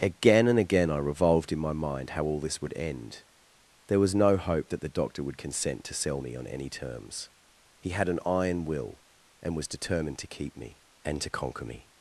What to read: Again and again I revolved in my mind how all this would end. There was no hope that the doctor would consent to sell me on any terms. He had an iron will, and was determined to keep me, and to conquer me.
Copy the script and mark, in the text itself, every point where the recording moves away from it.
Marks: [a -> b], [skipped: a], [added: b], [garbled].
Again and again I revolved in my mind how all this would end. There was no hope that the doctor would consent to sell me on any terms. He had an iron will, and was determined to keep me, and to conquer me.